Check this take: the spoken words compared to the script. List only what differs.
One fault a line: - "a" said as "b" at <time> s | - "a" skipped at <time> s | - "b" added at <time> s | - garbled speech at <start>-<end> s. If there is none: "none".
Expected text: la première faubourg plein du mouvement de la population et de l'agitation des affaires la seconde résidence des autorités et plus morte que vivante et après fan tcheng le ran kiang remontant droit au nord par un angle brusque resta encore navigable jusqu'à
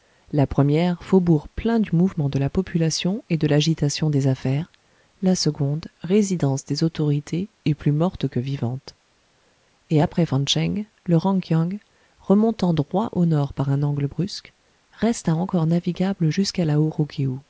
none